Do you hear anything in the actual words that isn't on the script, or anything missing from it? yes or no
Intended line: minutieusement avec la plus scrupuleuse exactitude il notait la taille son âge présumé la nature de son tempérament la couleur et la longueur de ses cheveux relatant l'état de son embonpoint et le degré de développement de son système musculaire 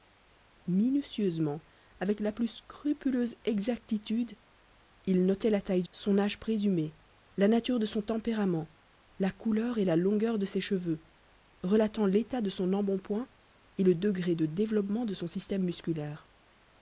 no